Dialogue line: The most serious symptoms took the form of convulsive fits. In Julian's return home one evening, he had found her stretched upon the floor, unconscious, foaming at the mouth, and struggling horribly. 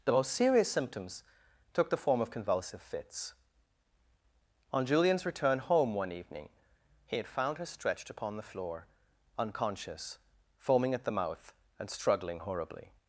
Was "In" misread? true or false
true